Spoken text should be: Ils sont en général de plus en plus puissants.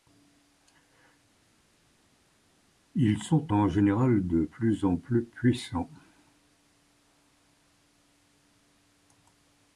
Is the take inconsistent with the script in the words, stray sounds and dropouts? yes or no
no